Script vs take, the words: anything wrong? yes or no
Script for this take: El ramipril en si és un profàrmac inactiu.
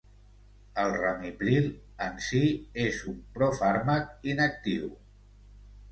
no